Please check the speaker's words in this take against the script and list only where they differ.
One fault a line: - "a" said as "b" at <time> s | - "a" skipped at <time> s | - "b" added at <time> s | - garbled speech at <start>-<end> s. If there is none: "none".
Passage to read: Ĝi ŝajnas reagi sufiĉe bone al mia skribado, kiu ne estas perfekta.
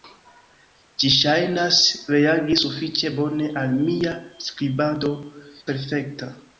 - "kiu ne estas" skipped at 5.1 s